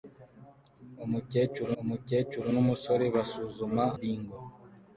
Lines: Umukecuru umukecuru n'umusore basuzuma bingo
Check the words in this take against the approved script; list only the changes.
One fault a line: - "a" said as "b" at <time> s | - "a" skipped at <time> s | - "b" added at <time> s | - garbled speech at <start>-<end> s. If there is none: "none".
none